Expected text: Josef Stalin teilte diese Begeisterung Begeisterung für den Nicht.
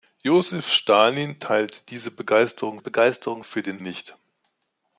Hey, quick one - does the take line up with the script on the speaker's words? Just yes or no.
yes